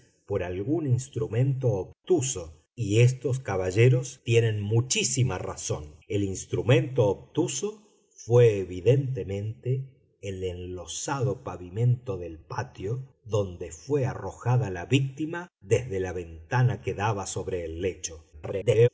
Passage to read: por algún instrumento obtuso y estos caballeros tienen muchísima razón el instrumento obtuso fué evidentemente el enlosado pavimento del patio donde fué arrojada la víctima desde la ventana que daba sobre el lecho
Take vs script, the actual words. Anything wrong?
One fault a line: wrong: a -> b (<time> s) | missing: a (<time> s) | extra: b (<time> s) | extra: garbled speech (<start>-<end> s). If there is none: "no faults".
extra: garbled speech (18.3-18.9 s)